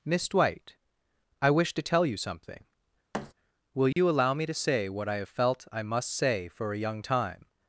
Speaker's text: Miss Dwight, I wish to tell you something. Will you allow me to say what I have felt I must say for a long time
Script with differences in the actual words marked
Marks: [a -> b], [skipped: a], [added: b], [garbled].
Miss Dwight, I wish to tell you something. Will you allow me to say what I have felt I must say for a [long -> young] time